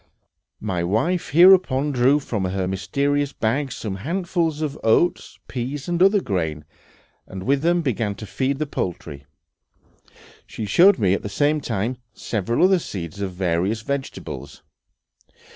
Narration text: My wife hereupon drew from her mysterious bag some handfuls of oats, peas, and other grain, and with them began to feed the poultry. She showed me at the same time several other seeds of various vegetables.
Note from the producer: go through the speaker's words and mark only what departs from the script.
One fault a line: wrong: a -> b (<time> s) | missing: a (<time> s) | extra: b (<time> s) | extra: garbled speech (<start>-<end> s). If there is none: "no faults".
no faults